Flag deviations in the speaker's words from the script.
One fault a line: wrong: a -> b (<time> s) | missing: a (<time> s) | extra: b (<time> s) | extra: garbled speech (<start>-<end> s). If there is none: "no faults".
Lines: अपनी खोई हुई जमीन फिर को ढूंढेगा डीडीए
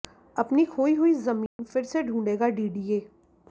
wrong: को -> से (1.8 s)